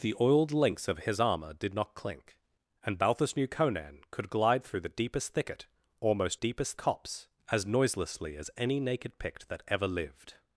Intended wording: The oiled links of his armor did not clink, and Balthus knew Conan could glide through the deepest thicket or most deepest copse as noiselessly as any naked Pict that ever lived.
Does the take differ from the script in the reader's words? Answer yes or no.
no